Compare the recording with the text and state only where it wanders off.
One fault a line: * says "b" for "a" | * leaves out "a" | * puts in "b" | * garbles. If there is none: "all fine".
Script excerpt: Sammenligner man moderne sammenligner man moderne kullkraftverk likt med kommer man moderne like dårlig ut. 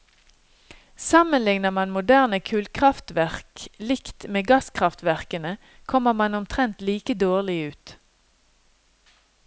* leaves out "sammenligner man moderne"
* puts in "gasskraftverkene"
* says "omtrent" for "moderne"